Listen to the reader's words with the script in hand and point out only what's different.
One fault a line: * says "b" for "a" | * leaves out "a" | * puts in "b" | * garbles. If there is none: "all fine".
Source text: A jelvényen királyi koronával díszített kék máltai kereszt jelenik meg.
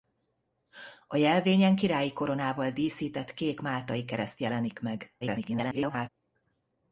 * garbles